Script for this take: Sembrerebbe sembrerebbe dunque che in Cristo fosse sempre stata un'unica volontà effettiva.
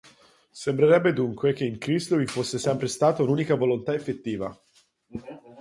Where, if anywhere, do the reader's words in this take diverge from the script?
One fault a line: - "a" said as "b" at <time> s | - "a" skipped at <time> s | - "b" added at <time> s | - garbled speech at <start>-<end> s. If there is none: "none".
- "sembrerebbe" skipped at 1.1 s
- "vi" added at 2.1 s